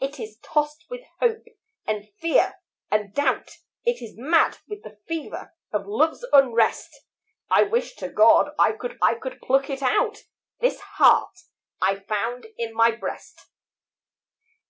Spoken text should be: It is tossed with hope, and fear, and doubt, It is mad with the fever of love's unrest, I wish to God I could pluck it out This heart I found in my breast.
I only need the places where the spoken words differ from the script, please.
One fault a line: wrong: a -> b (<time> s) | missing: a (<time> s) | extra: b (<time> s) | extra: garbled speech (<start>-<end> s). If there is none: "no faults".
extra: I could (9.0 s)